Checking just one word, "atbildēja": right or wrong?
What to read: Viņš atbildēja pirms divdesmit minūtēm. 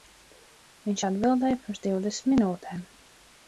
right